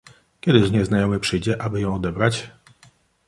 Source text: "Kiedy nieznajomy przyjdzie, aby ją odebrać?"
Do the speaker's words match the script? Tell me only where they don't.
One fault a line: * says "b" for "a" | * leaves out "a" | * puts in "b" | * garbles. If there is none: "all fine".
all fine